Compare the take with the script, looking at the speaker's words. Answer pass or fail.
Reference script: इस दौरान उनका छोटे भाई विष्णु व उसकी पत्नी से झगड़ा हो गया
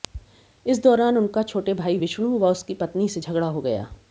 pass